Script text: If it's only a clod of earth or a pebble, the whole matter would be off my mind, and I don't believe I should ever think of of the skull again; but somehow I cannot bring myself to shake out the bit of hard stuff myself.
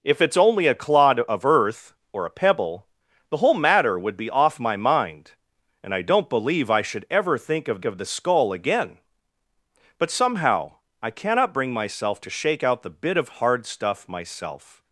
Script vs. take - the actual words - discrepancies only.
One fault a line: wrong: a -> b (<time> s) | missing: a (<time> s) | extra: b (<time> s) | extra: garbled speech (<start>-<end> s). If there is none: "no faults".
no faults